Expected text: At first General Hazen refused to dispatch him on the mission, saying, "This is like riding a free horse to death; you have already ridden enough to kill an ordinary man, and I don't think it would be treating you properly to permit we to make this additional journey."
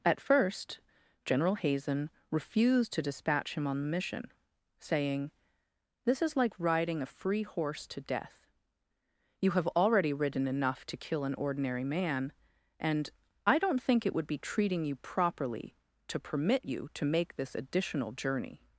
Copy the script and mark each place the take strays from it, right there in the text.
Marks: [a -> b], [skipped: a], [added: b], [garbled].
At first General Hazen refused to dispatch him on the mission, saying, "This is like riding a free horse to death; you have already ridden enough to kill an ordinary man, and I don't think it would be treating you properly to permit [we -> you] to make this additional journey."